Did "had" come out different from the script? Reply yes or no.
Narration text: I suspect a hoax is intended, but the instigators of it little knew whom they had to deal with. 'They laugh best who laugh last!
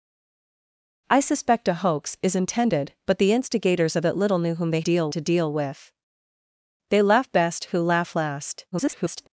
yes